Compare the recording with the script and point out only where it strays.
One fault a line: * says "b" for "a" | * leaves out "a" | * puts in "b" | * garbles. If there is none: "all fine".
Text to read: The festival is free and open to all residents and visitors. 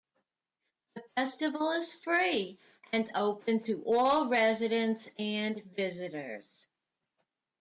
all fine